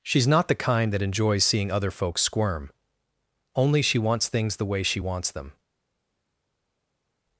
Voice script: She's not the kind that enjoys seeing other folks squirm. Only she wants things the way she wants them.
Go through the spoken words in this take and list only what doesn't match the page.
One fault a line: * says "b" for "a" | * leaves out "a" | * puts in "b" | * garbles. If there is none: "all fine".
all fine